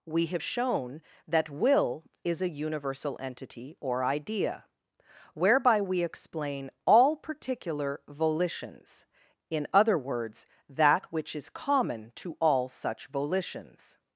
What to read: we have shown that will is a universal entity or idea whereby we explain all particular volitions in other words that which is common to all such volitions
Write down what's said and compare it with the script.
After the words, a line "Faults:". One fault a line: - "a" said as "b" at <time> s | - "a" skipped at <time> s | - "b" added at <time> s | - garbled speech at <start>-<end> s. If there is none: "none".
we have shown that will is a universal entity or idea whereby we explain all particular volitions in other words that which is common to all such volitions
Faults:
none